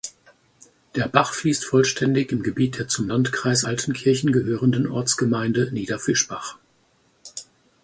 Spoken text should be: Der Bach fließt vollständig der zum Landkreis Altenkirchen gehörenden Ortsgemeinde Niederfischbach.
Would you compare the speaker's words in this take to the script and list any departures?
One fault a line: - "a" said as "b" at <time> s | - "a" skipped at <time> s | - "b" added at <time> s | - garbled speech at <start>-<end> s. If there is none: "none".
- "im Gebiet" added at 2.3 s